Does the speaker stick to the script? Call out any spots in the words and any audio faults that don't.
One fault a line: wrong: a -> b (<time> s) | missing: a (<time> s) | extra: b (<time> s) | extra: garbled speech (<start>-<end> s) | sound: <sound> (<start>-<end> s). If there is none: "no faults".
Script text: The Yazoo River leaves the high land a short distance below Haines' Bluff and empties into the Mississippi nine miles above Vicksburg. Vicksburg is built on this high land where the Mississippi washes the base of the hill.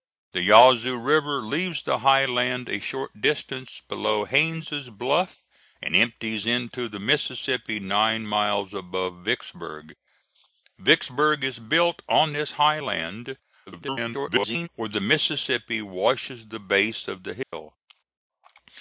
extra: garbled speech (13.7-14.7 s)
sound: dropout (17.4-17.5 s)